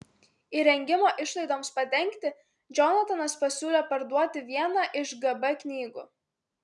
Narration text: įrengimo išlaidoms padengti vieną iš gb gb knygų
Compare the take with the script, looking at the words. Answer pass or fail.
fail